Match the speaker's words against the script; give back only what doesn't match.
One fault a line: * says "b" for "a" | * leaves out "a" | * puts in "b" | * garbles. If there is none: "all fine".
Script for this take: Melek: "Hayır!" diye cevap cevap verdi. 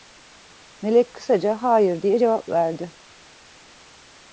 * puts in "kısaca"
* leaves out "cevap"